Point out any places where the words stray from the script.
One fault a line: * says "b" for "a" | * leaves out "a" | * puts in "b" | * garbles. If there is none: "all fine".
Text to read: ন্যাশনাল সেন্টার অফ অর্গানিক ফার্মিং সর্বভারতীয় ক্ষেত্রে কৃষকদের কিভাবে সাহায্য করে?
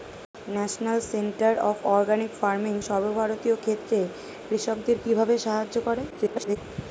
* garbles